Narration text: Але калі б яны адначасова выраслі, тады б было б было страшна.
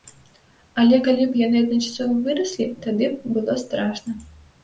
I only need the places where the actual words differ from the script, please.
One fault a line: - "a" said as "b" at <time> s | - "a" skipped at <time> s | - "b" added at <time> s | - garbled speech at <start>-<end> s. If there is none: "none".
- "б было" skipped at 3.5 s